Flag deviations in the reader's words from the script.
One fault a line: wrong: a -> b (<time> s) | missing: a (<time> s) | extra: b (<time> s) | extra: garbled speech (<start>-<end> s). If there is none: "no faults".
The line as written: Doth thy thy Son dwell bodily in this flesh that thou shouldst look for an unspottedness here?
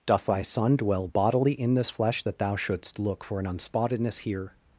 missing: thy (0.4 s)